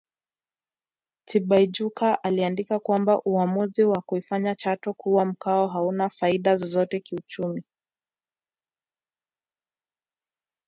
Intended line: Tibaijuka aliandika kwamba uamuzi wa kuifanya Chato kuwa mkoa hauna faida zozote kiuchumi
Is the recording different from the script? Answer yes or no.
no